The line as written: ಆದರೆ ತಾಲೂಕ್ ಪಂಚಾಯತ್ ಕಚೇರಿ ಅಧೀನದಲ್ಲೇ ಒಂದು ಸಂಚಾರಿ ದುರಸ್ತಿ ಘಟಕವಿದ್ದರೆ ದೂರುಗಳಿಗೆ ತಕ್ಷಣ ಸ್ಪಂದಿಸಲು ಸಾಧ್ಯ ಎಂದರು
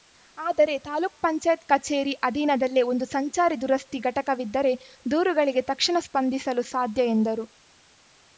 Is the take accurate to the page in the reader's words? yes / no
yes